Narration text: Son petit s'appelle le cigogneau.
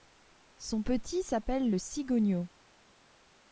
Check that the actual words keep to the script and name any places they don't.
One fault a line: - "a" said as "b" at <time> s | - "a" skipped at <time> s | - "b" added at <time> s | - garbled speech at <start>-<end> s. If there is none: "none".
none